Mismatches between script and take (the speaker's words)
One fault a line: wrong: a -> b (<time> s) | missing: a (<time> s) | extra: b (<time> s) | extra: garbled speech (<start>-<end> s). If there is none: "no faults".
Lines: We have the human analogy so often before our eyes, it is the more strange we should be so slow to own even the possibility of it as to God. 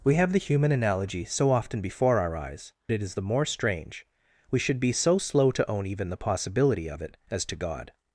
no faults